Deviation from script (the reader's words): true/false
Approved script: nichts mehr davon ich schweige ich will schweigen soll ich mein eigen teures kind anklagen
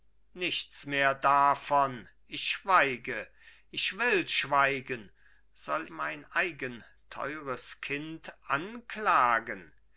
true